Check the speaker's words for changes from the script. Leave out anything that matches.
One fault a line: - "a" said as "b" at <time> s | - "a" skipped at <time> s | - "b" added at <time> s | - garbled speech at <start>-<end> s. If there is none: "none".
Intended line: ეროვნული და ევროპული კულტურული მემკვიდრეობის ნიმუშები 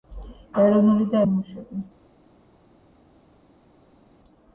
- "ევროპული კულტურული მემკვიდრეობის" skipped at 1.2 s